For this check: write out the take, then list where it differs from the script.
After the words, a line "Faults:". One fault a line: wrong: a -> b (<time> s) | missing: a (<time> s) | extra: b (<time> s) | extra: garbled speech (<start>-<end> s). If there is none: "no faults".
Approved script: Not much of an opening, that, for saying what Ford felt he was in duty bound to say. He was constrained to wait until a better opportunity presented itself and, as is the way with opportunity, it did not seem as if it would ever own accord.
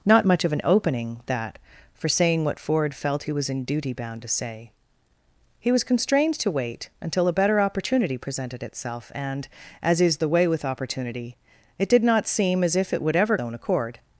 Not much of an opening, that, for saying what Ford felt he was in duty bound to say. He was constrained to wait until a better opportunity presented itself and, as is the way with opportunity, it did not seem as if it would ever own accord.
Faults:
no faults